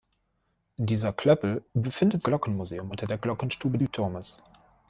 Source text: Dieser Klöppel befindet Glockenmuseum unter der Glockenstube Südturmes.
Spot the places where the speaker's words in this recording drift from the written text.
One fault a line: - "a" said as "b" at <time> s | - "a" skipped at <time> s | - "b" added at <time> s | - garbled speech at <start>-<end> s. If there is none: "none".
none